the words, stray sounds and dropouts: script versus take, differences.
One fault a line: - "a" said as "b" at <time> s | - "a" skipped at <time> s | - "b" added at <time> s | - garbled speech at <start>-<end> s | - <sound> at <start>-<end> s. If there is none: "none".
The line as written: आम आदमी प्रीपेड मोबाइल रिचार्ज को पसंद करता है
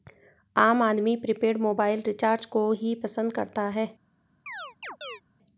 - "ही" added at 2.7 s
- chirp at 4.5-5.2 s